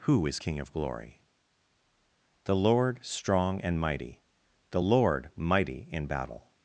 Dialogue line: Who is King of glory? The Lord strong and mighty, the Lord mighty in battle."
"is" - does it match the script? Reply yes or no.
yes